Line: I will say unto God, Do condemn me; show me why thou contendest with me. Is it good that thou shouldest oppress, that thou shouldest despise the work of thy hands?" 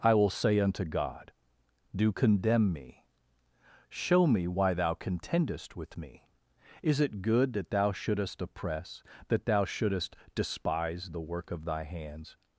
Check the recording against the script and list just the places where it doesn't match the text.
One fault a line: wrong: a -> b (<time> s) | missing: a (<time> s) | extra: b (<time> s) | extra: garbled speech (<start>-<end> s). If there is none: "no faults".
no faults